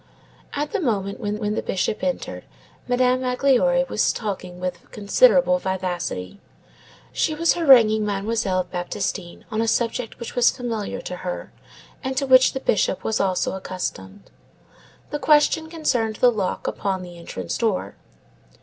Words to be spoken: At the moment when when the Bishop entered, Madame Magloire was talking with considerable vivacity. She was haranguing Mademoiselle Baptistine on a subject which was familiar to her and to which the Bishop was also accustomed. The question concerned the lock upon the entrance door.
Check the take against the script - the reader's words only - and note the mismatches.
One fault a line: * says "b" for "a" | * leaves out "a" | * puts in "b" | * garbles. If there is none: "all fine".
all fine